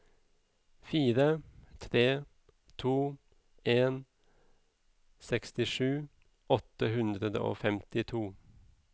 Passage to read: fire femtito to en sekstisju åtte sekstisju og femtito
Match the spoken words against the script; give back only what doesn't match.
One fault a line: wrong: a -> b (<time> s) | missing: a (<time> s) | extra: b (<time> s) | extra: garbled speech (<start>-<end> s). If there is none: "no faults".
wrong: femtito -> tre (1.8 s)
wrong: sekstisju -> hundre (7.0 s)